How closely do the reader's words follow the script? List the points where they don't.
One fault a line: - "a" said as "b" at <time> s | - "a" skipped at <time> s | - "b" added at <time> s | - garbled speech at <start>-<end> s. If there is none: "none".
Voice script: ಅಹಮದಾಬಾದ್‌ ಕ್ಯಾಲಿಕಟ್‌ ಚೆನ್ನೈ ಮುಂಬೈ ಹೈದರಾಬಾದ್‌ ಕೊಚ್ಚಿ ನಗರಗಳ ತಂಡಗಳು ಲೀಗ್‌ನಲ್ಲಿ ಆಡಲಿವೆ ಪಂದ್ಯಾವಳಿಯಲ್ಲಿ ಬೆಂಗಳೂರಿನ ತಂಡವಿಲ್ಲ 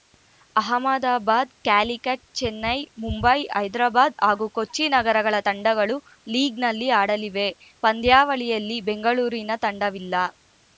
- "ಹಾಗೂ" added at 4.2 s